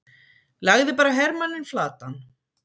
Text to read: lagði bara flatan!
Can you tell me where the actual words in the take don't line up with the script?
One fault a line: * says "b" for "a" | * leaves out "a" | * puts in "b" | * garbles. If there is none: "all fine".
* puts in "hermanninn"